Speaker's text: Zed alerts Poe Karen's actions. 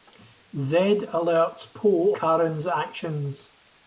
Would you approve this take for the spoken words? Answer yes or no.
yes